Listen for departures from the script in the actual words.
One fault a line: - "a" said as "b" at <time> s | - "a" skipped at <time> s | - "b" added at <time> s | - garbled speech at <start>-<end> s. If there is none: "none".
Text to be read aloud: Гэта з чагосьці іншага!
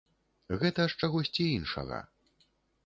none